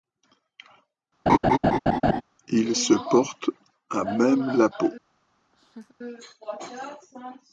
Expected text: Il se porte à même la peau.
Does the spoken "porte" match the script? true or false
true